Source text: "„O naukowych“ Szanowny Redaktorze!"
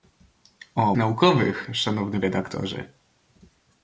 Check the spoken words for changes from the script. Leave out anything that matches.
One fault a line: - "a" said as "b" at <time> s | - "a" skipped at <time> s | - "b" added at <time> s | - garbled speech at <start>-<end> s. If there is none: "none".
none